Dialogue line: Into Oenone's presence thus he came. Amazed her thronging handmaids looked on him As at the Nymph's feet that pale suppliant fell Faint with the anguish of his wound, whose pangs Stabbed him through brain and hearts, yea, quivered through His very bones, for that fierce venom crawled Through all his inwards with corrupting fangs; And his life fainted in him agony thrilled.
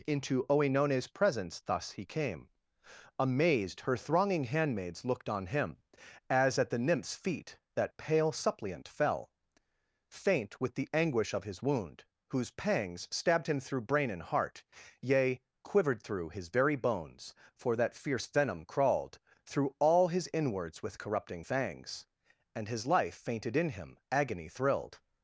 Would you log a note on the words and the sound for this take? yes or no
yes